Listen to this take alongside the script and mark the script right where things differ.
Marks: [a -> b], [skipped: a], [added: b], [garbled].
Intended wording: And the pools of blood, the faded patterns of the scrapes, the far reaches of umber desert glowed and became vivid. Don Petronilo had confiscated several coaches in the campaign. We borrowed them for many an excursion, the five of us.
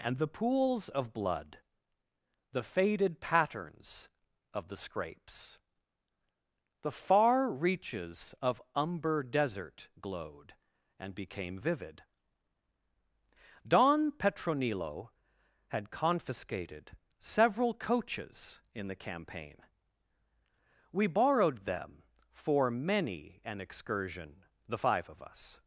And the pools of blood, the faded patterns of the scrapes, the far reaches of umber desert glowed and became vivid. Don Petronilo had confiscated several coaches in the campaign. We borrowed them for many an excursion, the five of us.